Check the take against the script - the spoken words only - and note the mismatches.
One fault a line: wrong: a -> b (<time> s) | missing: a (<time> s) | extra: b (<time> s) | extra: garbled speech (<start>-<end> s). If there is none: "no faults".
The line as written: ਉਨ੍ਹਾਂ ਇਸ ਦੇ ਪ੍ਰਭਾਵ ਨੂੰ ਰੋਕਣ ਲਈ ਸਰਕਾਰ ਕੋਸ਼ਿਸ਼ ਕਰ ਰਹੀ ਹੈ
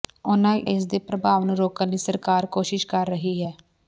no faults